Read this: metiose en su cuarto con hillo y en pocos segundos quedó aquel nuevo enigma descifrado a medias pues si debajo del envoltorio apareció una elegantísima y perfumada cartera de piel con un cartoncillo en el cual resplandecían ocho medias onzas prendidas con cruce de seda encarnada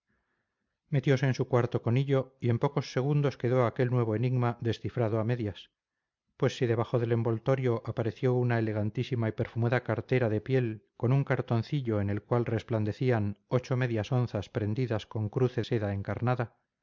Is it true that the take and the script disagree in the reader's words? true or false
true